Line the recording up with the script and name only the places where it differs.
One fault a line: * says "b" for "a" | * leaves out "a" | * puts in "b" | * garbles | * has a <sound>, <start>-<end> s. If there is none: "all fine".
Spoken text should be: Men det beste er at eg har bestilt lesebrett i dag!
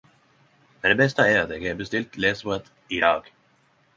all fine